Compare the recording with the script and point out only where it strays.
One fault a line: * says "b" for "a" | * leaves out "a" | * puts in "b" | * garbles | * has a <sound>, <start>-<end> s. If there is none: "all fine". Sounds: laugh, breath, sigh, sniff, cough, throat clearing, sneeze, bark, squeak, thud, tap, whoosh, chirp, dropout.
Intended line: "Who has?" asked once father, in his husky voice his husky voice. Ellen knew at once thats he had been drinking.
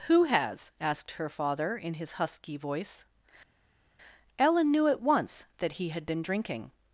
* says "her" for "once"
* leaves out "his husky voice"
* says "that" for "thats"